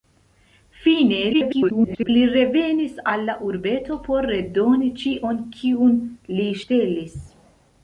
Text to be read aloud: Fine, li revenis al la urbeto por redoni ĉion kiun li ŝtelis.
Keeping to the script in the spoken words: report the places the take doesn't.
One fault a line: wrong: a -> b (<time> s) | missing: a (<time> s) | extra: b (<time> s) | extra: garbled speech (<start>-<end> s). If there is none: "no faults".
extra: garbled speech (1.3-2.1 s)